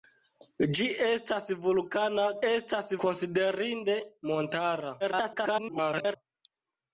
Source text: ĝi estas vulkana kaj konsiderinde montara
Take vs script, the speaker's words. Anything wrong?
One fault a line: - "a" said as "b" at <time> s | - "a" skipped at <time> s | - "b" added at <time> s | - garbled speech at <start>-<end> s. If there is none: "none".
- "kaj" said as "estas" at 2.5 s
- garbled speech at 5.0-6.2 s